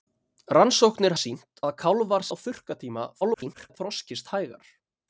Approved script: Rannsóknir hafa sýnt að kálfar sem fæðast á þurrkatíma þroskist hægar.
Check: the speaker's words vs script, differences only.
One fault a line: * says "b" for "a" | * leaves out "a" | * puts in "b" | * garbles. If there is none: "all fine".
* leaves out "hafa"
* leaves out "sem fæðast"
* garbles